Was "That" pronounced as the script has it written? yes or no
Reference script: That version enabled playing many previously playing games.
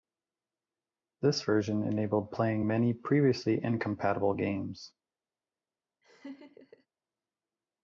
no